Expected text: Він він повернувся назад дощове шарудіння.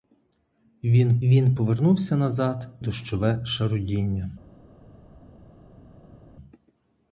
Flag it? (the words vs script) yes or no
no